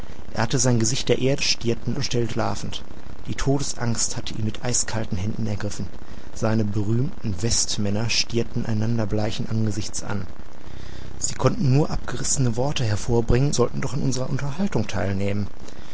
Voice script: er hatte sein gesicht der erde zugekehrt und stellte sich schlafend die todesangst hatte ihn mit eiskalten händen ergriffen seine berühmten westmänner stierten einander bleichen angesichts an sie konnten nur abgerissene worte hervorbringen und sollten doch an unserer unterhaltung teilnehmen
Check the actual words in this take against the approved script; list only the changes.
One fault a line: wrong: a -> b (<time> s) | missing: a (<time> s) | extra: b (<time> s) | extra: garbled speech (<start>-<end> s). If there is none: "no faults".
wrong: zugekehrt -> stierten (1.4 s)
missing: sich (2.3 s)
missing: und (13.5 s)